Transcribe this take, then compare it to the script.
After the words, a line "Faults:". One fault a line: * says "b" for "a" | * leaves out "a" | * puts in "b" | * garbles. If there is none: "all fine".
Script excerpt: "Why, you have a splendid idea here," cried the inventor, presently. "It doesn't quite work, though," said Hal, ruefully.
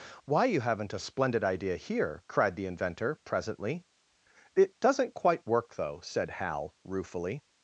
"Why, you haven't a splendid idea here," cried the inventor, presently. "It doesn't quite work, though," said Hal, ruefully.
Faults:
* says "haven't" for "have"